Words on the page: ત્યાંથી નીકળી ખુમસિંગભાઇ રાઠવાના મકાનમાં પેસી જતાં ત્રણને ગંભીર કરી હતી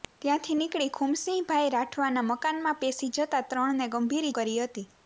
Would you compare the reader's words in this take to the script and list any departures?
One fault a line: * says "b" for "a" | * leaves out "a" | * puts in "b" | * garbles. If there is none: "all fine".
all fine